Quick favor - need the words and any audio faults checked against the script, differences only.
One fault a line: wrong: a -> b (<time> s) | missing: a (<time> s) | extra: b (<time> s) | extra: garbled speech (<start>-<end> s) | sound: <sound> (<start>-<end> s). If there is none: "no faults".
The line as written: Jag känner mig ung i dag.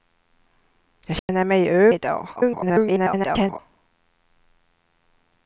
sound: dropout (1.2-1.3 s)
missing: ung (1.9 s)
extra: garbled speech (2.4-3.6 s)